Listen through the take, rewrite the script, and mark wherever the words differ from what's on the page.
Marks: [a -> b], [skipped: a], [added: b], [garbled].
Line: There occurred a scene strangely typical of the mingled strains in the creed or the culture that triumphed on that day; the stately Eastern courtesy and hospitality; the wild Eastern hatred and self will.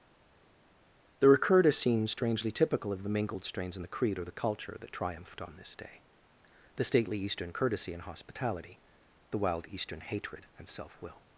There occurred a scene strangely typical of the mingled strains in the creed or the culture that triumphed on [that -> this] day; the stately Eastern courtesy and hospitality; the wild Eastern hatred and self will.